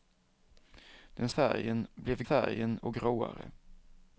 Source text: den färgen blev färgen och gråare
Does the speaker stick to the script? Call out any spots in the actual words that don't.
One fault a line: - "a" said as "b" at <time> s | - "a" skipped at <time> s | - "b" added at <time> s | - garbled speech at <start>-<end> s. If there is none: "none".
none